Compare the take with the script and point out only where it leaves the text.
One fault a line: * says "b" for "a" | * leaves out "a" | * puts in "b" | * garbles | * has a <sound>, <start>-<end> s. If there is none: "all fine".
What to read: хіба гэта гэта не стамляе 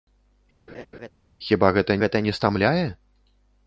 * has a laugh, 0.7-1.1 s